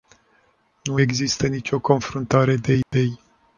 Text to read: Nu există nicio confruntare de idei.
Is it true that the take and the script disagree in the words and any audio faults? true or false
true